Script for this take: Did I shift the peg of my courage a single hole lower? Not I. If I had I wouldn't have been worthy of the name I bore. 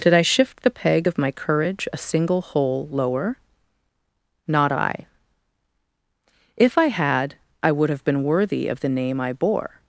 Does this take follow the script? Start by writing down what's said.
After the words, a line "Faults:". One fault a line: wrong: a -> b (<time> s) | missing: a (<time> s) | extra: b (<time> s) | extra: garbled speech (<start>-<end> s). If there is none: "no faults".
Did I shift the peg of my courage a single hole lower? Not I. If I had I would have been worthy of the name I bore.
Faults:
wrong: wouldn't -> would (7.7 s)